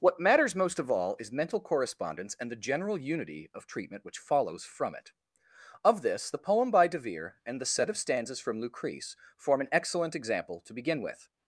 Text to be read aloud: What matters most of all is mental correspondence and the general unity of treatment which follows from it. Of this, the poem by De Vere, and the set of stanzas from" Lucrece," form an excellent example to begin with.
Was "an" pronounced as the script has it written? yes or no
yes